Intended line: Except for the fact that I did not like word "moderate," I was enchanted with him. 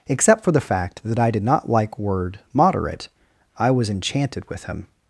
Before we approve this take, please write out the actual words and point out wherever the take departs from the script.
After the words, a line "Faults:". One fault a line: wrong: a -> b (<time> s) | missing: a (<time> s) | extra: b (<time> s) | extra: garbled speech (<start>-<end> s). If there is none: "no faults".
Except for the fact that I did not like word "moderate," I was enchanted with him.
Faults:
no faults